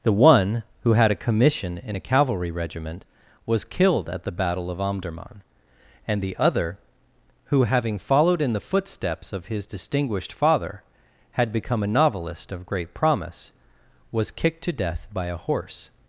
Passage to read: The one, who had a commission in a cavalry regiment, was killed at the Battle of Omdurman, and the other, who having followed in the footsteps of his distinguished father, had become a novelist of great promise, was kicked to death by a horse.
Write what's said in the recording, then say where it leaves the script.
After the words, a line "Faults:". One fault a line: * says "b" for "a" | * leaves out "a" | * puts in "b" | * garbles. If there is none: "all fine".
The one, who had a commission in a cavalry regiment, was killed at the Battle of Omdurman, and the other, who having followed in the footsteps of his distinguished father, had become a novelist of great promise, was kicked to death by a horse.
Faults:
all fine